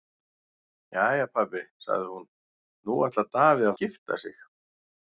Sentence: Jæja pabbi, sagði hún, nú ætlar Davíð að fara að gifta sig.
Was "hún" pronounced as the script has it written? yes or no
yes